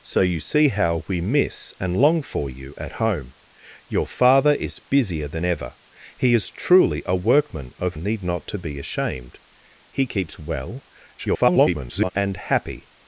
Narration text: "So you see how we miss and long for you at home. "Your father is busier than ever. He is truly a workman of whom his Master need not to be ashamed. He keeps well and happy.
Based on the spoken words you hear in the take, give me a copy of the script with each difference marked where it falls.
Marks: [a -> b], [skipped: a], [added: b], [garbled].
"So you see how we miss and long for you at home. "Your father is busier than ever. He is truly a workman of [skipped: whom his Master] need not to be ashamed. He keeps well [garbled] and happy.